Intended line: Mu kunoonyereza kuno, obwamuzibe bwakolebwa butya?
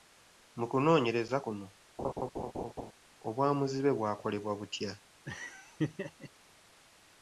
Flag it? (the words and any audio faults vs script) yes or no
yes